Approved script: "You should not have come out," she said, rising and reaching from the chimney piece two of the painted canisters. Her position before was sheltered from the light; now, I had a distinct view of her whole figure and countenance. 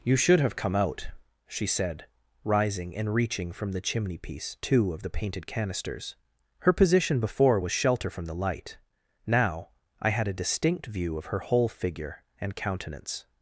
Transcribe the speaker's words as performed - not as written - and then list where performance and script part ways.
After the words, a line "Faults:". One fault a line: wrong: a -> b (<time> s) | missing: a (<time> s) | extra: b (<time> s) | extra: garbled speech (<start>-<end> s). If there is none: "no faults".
"You should have come out," she said, rising and reaching from the chimney piece two of the painted canisters. Her position before was shelter from the light; now, I had a distinct view of her whole figure and countenance.
Faults:
missing: not (0.4 s)
wrong: sheltered -> shelter (7.7 s)